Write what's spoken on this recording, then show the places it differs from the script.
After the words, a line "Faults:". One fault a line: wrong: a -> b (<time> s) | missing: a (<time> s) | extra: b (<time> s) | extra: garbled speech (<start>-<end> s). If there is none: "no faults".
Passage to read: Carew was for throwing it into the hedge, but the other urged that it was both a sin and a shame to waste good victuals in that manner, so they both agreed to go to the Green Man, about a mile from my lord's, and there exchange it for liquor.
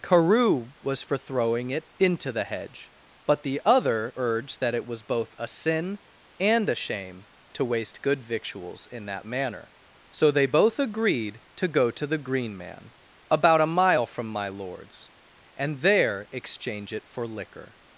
Carew was for throwing it into the hedge, but the other urged that it was both a sin and a shame to waste good victuals in that manner, so they both agreed to go to the Green Man, about a mile from my lord's, and there exchange it for liquor.
Faults:
no faults